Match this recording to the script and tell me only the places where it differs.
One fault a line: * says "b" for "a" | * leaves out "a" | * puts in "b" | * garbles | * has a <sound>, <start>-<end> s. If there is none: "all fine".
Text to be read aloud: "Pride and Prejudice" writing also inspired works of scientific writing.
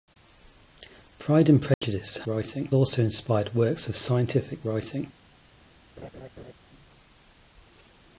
* has a dropout, 1.7-1.8 s
* has a laugh, 6.0-6.5 s